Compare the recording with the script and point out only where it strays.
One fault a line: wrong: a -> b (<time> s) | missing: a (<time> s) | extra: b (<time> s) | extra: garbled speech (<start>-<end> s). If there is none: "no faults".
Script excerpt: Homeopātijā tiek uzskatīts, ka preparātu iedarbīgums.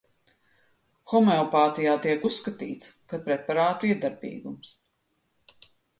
no faults